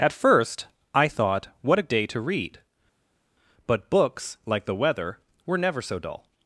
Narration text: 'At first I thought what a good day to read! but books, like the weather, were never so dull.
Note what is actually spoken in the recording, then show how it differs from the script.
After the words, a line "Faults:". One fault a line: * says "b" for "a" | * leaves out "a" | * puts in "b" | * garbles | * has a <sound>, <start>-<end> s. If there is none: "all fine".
'At first I thought what a day to read! but books, like the weather, were never so dull.
Faults:
* leaves out "good"